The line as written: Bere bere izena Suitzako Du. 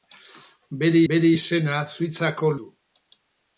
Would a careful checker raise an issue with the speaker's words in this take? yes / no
no